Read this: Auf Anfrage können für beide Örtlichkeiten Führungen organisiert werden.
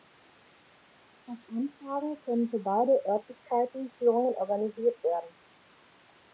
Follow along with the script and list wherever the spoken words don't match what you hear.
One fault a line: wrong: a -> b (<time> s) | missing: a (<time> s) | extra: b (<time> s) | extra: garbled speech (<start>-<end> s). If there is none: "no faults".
no faults